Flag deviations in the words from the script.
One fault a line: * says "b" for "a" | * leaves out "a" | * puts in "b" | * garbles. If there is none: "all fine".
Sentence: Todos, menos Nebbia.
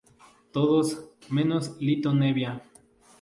* puts in "Litto"